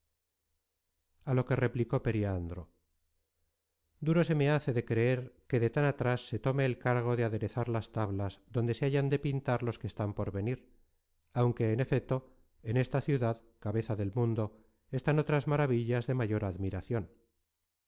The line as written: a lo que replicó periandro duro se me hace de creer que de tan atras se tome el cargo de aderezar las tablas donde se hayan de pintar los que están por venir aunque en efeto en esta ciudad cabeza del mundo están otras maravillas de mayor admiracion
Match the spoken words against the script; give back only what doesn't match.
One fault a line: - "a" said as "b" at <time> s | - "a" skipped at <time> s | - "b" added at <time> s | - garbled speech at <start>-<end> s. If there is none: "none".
none